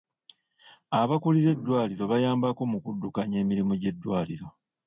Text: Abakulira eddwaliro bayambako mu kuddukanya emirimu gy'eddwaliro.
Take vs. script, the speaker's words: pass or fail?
pass